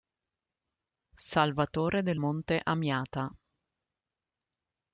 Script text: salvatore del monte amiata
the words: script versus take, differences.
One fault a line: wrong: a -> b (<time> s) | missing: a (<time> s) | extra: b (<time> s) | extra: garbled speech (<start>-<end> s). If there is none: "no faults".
no faults